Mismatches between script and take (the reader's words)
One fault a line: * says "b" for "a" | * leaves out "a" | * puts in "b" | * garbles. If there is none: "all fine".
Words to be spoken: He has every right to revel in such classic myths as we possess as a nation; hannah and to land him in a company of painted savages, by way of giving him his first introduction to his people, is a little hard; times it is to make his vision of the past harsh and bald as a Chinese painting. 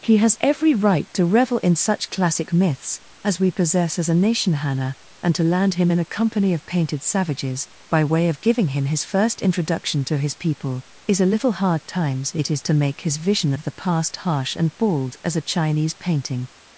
all fine